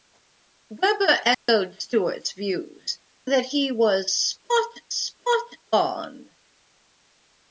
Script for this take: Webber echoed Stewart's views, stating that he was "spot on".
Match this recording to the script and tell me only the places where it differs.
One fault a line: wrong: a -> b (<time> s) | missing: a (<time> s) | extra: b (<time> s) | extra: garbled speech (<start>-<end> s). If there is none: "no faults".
missing: stating (3.0 s)
extra: spot (4.9 s)